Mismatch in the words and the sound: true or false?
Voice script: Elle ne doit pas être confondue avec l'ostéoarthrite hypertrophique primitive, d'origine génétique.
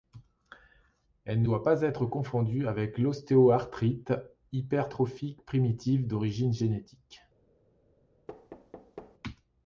true